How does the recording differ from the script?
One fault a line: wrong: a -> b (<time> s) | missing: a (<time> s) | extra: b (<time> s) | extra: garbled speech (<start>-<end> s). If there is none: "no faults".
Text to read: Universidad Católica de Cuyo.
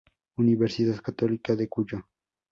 no faults